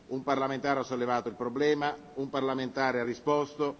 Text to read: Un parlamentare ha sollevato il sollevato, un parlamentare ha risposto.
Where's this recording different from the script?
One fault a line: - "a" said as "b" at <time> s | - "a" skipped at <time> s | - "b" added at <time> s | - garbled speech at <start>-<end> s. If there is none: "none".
- "sollevato" said as "problema" at 1.3 s